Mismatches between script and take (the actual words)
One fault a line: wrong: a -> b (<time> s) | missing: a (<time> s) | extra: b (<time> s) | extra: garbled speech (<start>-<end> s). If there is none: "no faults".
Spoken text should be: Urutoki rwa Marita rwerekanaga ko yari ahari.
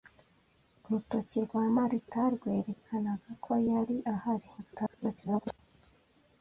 extra: garbled speech (4.6-5.6 s)